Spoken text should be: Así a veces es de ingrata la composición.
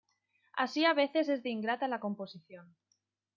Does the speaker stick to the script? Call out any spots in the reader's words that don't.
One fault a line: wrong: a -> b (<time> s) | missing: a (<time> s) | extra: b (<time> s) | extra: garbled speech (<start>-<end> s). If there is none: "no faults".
no faults